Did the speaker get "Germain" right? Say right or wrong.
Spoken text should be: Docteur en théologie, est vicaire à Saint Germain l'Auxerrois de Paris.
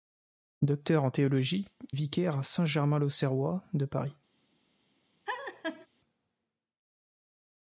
right